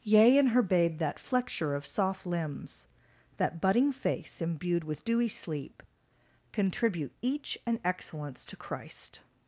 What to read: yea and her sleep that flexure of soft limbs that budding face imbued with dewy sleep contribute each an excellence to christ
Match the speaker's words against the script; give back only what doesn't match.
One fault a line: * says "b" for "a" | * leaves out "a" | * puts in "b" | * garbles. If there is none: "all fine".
* says "babe" for "sleep"